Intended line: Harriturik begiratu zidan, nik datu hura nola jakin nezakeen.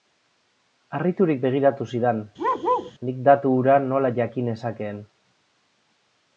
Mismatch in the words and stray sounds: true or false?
true